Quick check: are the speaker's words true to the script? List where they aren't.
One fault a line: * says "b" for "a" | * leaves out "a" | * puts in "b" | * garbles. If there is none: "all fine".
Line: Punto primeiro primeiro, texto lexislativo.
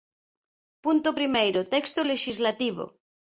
* leaves out "primeiro"